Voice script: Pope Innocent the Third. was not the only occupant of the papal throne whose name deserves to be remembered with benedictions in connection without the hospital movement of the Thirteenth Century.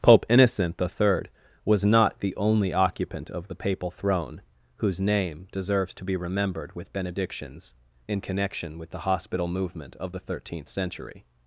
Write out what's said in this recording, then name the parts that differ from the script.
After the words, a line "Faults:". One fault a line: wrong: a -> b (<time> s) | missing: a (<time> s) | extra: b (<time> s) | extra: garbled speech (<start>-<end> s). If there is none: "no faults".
Pope Innocent the Third. was not the only occupant of the papal throne whose name deserves to be remembered with benedictions in connection with the hospital movement of the Thirteenth Century.
Faults:
wrong: without -> with (8.8 s)